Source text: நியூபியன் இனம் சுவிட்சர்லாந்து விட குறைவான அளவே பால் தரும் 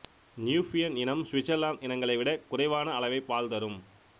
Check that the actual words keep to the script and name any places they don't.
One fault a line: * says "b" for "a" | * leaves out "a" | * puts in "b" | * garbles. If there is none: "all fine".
* puts in "இனங்களை"